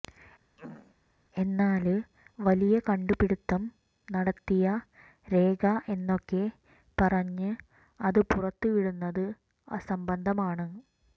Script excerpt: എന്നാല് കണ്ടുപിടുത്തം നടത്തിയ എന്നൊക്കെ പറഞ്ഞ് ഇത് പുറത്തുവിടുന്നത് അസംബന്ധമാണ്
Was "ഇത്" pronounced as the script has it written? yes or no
no